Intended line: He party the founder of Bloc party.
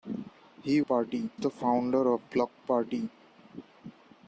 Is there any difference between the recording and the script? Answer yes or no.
no